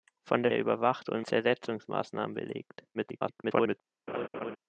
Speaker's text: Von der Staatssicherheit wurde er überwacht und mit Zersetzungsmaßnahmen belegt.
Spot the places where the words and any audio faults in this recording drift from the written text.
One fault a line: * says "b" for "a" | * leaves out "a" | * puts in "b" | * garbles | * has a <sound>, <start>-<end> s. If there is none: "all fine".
* leaves out "Staatssicherheit wurde"
* leaves out "mit"
* garbles
* has a laugh, 4.1-4.6 s